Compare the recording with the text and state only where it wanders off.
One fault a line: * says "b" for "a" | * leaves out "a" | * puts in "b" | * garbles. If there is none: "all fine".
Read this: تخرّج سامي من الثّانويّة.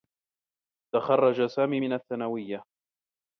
all fine